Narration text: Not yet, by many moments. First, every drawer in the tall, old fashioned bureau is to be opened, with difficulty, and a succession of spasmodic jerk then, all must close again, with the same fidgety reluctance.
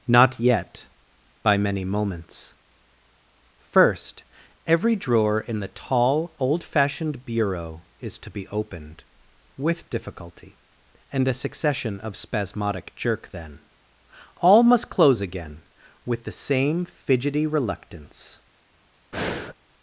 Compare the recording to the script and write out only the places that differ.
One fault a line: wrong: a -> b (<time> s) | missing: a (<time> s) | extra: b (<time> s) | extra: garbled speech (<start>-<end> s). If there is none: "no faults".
no faults